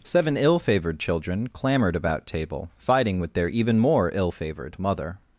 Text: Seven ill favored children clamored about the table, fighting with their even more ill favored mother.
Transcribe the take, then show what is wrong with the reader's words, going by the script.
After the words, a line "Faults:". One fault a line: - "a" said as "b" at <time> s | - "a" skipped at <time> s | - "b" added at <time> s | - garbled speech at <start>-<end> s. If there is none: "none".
Seven ill favored children clamored about table, fighting with their even more ill favored mother.
Faults:
- "the" skipped at 2.2 s